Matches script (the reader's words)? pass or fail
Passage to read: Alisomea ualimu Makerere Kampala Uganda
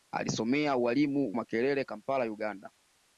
pass